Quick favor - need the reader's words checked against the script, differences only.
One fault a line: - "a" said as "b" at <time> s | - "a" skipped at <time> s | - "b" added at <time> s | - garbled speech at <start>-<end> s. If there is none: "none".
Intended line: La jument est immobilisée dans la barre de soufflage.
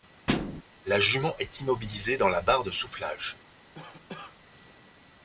none